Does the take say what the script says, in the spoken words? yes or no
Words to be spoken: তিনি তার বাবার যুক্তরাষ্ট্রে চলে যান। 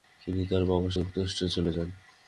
yes